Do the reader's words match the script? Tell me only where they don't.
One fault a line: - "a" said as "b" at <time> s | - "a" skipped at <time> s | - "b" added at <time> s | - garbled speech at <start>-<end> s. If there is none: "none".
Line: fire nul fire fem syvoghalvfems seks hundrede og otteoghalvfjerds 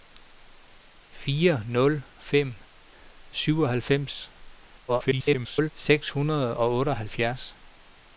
- "fire" skipped at 2.0 s
- garbled speech at 4.9-5.7 s